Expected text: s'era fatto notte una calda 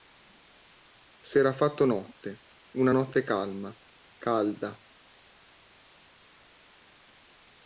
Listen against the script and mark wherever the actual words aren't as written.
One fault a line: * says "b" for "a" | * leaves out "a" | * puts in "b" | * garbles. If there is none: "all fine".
* puts in "notte calma"